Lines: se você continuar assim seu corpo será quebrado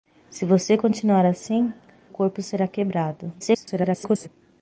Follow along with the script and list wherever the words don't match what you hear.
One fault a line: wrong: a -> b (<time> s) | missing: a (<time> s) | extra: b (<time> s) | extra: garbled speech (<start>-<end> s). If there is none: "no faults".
missing: seu (1.7 s)
extra: garbled speech (3.4-4.3 s)